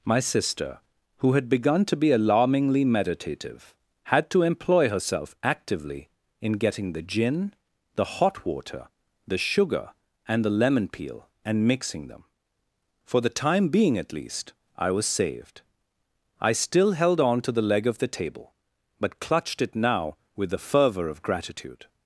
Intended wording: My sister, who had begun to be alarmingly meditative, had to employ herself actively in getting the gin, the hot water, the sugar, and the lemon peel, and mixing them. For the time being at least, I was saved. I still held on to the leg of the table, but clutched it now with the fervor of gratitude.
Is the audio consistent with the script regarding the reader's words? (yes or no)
yes